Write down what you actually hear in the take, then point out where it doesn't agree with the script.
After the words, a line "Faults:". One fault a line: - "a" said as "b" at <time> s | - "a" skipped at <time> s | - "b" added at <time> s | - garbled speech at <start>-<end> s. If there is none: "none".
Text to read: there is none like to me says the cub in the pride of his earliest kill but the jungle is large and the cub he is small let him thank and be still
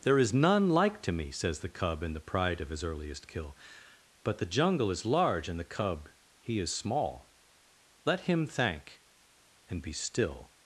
there is none like to me says the cub in the pride of his earliest kill but the jungle is large and the cub he is small let him thank and be still
Faults:
none